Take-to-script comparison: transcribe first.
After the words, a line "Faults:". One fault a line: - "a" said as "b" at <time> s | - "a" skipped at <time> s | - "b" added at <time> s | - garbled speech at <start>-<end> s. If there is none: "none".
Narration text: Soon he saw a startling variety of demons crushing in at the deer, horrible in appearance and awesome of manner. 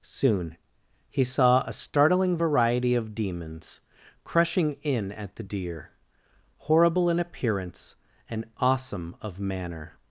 Soon he saw a startling variety of demons crushing in at the deer, horrible in appearance and awesome of manner.
Faults:
none